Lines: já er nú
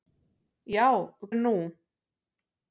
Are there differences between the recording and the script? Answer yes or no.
no